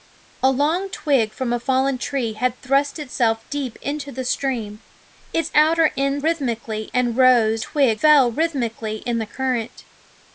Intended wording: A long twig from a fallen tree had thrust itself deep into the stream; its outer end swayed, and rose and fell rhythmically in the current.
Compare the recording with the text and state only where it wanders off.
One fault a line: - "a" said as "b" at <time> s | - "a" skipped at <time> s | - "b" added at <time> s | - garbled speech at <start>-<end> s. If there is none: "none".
- "swayed" said as "rhythmically" at 6.2 s
- "and" said as "twig" at 7.6 s